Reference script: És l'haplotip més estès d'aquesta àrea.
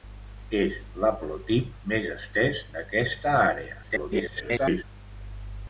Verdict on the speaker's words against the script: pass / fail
fail